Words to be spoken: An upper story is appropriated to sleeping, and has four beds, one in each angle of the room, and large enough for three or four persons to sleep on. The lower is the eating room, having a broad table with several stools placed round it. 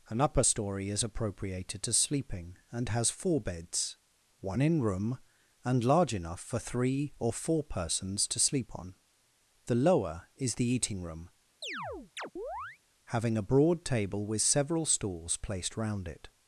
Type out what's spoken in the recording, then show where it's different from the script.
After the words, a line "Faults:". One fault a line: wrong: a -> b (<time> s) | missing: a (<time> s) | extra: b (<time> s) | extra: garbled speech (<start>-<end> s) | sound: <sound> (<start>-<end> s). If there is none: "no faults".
An upper story is appropriated to sleeping, and has four beds, one in room, and large enough for three or four persons to sleep on. The lower is the eating room, having a broad table with several stools placed round it.
Faults:
missing: each angle of the (4.8 s)
sound: chirp (11.6-12.8 s)